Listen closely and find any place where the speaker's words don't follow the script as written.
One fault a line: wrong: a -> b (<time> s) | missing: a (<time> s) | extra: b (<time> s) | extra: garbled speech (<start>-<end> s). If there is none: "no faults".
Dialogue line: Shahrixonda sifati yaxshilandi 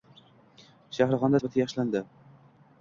no faults